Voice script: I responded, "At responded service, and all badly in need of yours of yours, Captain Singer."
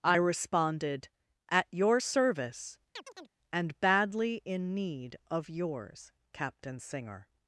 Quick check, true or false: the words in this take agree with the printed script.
false